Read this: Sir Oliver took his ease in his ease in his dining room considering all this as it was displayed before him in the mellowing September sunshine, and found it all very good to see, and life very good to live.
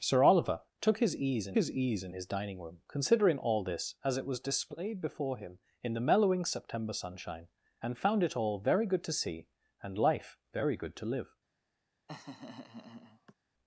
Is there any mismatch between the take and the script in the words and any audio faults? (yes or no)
yes